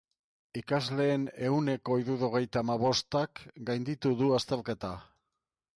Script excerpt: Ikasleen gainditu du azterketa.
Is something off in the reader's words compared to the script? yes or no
yes